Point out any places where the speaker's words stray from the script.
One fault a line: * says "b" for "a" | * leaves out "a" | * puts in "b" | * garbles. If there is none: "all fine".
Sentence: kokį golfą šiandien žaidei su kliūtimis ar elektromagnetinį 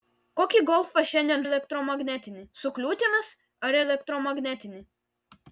* says "elektromagnetinį" for "žaidei"